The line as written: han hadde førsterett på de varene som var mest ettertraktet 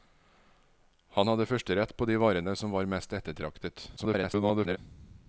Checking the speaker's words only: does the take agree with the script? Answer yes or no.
no